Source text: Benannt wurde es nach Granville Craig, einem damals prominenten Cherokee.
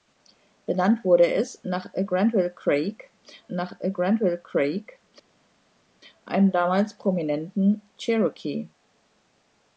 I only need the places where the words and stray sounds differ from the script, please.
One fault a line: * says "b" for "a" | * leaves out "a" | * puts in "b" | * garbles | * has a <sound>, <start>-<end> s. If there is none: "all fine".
* puts in "nach Granville Craig"